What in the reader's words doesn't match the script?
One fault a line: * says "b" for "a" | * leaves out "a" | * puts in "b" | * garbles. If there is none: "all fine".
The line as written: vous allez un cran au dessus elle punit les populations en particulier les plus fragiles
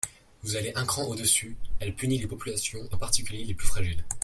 all fine